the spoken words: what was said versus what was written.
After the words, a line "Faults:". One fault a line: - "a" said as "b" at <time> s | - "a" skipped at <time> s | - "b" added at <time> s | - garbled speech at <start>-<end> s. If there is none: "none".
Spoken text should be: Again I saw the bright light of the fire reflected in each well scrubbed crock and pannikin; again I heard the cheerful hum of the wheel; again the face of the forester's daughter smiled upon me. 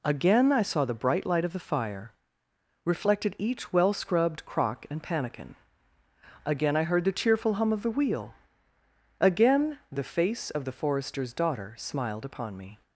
Again I saw the bright light of the fire reflected each well scrubbed crock and pannikin; again I heard the cheerful hum of the wheel; again the face of the forester's daughter smiled upon me.
Faults:
- "in" skipped at 3.4 s